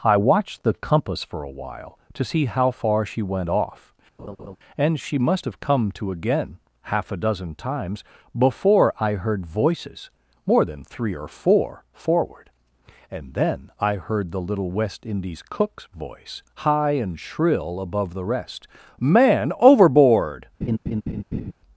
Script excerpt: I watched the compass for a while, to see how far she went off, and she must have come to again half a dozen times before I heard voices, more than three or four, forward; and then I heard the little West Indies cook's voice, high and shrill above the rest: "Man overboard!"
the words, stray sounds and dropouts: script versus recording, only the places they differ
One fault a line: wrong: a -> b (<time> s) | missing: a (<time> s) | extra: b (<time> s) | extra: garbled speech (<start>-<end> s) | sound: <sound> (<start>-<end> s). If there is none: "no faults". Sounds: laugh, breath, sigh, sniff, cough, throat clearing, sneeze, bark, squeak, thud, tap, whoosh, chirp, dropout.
sound: laugh (4.2-4.6 s)
sound: laugh (20.6-21.5 s)